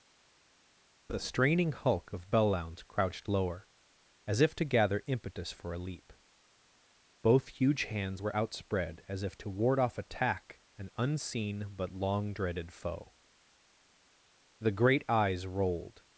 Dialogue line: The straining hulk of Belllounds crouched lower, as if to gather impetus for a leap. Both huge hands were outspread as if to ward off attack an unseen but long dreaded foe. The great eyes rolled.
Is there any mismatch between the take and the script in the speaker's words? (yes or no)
no